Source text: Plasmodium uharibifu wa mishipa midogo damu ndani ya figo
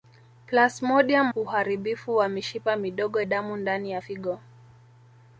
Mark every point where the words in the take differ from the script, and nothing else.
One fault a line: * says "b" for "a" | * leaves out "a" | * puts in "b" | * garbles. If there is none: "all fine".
all fine